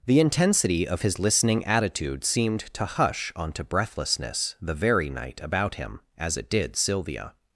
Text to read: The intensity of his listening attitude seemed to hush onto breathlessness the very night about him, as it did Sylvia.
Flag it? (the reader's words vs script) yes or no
no